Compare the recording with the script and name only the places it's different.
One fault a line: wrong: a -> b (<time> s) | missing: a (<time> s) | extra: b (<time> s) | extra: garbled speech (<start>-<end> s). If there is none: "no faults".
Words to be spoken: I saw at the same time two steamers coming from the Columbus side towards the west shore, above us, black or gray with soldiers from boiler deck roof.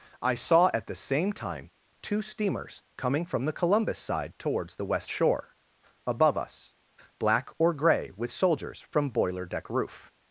no faults